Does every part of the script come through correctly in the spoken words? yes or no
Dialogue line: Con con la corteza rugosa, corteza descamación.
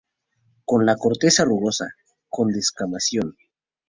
no